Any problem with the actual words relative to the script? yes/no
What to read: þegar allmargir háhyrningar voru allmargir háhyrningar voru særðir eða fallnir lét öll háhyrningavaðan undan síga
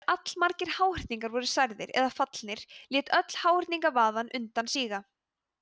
yes